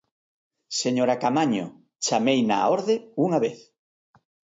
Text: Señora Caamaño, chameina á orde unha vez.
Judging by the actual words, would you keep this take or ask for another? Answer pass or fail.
pass